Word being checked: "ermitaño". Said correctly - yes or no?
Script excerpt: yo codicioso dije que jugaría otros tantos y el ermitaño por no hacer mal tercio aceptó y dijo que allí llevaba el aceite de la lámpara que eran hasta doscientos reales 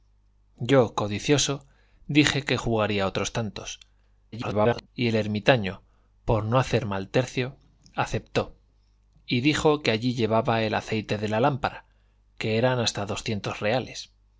yes